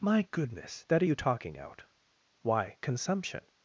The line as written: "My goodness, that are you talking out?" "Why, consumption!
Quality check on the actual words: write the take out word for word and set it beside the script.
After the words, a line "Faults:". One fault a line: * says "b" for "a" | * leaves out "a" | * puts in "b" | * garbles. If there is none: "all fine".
"My goodness, that are you talking out?" "Why, consumption!
Faults:
all fine